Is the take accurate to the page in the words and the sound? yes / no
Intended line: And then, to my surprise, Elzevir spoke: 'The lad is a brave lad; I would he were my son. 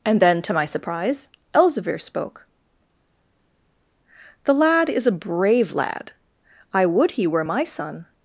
yes